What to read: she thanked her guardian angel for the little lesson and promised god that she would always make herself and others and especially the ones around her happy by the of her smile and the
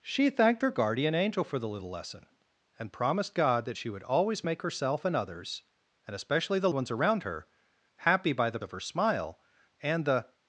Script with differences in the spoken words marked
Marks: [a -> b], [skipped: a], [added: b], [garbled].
she thanked her guardian angel for the little lesson and promised god that she would always make herself and others and especially the ones around her happy by the of her smile and the